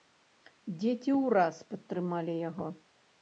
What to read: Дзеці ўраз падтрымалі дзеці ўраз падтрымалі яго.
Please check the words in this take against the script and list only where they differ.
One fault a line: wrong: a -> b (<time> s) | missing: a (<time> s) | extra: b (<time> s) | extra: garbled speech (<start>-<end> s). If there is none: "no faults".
missing: дзеці ўраз падтрымалі (2.3 s)